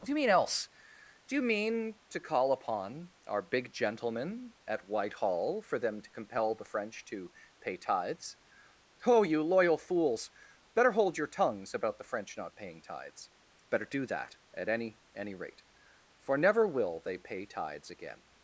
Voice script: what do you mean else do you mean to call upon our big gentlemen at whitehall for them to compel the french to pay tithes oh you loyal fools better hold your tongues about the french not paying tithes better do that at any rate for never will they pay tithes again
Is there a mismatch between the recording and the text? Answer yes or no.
yes